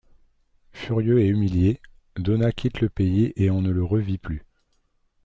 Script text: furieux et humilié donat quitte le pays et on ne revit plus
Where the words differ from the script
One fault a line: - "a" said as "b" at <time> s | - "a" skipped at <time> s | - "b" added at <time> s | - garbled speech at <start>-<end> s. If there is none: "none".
- "le" added at 3.7 s